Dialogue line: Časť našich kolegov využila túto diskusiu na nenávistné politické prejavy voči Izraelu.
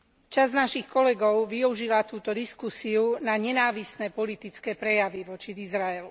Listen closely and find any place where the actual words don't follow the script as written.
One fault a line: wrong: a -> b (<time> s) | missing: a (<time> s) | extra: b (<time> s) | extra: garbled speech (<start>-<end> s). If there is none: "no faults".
no faults